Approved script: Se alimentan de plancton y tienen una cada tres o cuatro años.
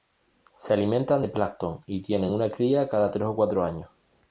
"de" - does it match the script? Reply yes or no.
yes